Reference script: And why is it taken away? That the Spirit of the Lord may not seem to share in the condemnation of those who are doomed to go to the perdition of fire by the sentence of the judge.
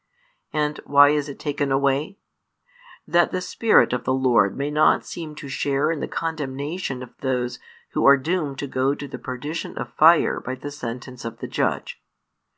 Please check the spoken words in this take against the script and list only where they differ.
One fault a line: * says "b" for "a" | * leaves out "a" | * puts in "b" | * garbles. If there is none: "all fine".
all fine